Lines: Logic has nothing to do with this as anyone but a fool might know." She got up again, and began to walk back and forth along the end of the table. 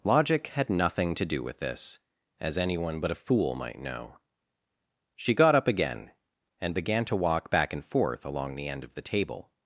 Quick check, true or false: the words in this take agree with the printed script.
false